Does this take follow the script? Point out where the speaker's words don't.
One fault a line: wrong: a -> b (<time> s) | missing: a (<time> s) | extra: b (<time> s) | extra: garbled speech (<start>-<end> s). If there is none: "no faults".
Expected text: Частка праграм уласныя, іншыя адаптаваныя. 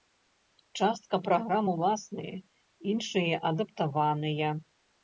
no faults